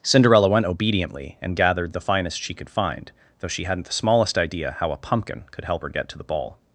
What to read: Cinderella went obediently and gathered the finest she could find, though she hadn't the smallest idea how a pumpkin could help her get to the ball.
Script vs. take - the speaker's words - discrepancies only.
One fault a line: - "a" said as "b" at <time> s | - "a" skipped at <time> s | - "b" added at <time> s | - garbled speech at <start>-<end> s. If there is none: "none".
none